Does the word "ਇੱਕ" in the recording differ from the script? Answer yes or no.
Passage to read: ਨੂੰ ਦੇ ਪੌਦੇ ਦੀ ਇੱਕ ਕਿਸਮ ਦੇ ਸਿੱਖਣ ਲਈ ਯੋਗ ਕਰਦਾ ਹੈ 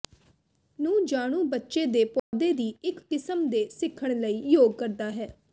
no